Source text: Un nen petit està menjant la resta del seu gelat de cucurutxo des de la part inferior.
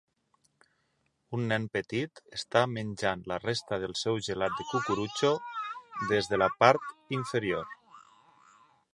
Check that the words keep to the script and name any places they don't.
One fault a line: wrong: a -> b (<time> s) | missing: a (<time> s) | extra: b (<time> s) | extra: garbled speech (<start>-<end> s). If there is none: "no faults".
no faults